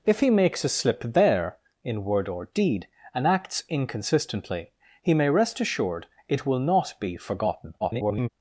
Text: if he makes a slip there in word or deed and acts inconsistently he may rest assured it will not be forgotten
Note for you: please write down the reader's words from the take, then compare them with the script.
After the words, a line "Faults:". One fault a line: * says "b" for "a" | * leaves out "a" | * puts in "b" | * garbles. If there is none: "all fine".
if he makes a slip there in word or deed and acts inconsistently he may rest assured it will not be forgotten [garbled]
Faults:
* garbles